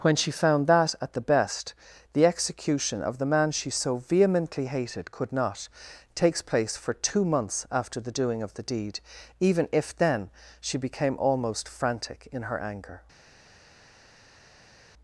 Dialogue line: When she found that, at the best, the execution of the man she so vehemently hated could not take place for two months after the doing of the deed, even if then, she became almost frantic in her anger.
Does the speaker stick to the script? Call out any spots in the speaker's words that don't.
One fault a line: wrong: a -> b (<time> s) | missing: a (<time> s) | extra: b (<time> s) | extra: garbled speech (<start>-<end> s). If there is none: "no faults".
wrong: take -> takes (6.2 s)